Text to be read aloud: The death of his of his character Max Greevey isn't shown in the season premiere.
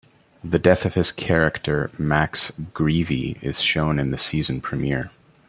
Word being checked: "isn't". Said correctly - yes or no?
no